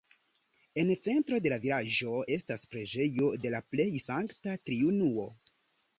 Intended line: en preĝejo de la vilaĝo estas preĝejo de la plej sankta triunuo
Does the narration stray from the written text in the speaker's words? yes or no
yes